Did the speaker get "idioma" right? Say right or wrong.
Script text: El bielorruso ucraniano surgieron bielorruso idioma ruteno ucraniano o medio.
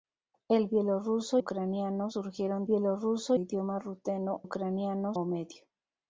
right